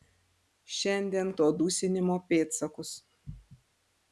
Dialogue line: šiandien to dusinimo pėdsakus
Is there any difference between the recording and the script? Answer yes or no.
no